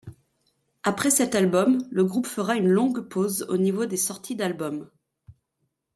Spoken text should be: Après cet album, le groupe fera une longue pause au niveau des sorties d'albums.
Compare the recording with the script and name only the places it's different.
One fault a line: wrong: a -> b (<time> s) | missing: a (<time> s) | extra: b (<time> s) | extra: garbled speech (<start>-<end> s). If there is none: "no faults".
no faults